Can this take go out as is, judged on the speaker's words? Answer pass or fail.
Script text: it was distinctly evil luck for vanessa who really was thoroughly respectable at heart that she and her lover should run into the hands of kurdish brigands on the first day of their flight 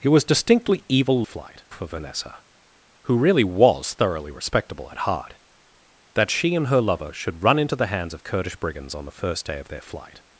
fail